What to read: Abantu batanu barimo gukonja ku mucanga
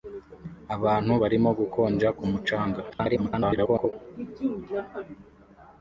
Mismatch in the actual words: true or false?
true